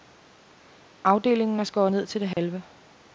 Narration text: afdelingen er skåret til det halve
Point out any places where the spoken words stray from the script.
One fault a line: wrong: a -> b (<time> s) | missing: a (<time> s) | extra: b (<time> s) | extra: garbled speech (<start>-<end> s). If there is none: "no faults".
extra: ned (1.9 s)